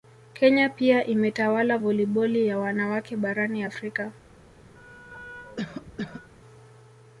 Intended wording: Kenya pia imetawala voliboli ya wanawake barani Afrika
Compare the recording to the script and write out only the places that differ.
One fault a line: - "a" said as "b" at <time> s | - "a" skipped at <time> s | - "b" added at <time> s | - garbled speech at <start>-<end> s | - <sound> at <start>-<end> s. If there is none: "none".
- cough at 4.8-6.3 s